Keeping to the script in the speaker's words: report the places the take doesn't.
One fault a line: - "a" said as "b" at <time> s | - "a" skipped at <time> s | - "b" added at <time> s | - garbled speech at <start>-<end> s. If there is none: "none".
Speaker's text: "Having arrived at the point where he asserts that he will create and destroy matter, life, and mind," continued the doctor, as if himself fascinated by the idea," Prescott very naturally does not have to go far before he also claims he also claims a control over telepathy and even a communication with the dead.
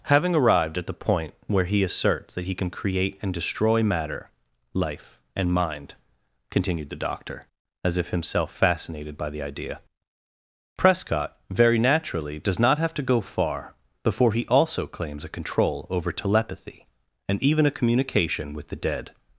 - "will" said as "can" at 2.5 s
- "he also claims" skipped at 15.3 s